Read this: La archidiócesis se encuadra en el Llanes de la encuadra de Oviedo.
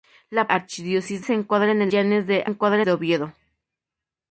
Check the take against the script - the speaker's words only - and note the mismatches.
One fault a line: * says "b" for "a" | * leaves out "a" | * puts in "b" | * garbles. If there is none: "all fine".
all fine